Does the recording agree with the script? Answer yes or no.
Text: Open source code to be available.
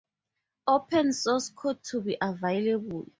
yes